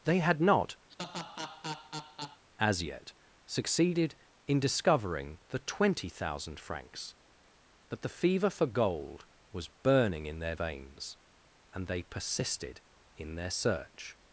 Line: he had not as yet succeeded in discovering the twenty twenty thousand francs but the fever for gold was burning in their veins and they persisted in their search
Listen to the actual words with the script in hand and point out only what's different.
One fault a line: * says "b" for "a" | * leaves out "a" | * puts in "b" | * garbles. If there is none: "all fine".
* says "they" for "he"
* leaves out "twenty"